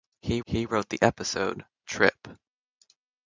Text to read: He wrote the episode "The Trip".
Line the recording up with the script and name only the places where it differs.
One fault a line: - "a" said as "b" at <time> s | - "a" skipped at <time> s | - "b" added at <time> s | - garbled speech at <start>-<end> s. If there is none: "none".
- "he" added at 0.5 s
- "The" skipped at 1.7 s